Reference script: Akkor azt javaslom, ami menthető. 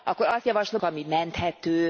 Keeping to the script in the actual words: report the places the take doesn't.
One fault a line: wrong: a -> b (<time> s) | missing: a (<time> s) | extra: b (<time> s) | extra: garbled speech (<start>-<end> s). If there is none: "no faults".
no faults